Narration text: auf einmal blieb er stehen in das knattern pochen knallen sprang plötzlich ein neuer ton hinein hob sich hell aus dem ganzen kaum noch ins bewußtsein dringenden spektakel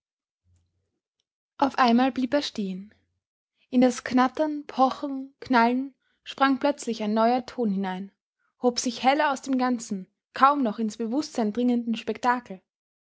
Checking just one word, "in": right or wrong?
right